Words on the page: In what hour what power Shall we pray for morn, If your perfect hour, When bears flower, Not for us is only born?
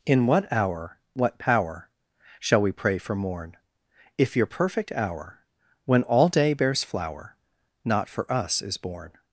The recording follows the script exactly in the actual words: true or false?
false